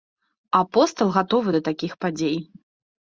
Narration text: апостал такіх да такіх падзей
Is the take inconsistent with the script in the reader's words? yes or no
yes